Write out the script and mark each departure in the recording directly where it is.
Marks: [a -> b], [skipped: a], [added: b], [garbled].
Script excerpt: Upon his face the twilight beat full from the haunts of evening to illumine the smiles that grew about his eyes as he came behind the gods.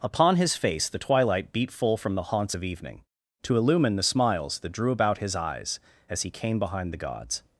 Upon his face the twilight beat full from the haunts of evening to illumine the smiles that [grew -> drew] about his eyes as he came behind the gods.